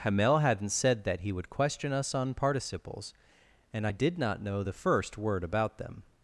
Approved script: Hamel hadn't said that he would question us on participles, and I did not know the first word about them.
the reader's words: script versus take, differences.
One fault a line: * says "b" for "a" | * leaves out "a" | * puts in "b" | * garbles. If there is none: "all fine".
all fine